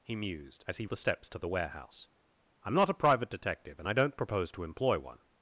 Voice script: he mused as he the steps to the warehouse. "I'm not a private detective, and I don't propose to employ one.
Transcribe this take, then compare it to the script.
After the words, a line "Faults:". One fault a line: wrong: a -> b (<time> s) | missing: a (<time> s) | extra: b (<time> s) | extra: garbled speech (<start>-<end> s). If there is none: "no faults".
he mused as he the steps to the warehouse. "I'm not a private detective, and I don't propose to employ one.
Faults:
no faults